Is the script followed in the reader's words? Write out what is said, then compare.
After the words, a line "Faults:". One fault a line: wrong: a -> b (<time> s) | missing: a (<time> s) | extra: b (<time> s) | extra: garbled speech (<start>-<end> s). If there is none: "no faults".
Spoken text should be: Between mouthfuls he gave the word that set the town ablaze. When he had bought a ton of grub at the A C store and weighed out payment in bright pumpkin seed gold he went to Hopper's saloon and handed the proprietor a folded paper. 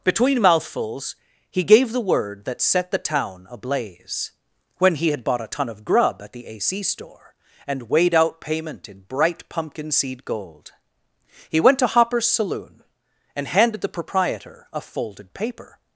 Between mouthfuls he gave the word that set the town ablaze. When he had bought a ton of grub at the A C store and weighed out payment in bright pumpkin seed gold he went to Hopper's saloon and handed the proprietor a folded paper.
Faults:
no faults